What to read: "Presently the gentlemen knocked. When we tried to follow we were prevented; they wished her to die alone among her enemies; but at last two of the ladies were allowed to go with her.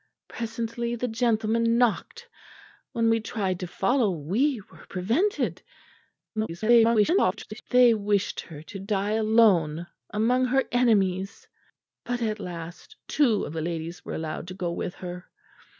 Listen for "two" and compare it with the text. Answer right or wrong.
right